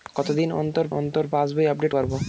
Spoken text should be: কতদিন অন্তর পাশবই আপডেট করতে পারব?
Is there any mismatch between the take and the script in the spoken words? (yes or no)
yes